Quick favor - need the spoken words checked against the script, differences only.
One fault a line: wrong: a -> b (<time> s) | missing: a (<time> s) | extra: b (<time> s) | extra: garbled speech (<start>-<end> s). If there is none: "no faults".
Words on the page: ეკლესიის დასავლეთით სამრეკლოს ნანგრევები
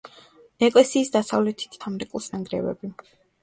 no faults